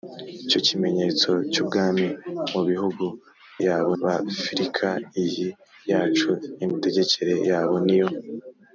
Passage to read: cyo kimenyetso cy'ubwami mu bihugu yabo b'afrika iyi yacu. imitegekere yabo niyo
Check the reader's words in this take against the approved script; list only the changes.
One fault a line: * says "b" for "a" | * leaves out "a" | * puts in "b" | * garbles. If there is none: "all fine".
all fine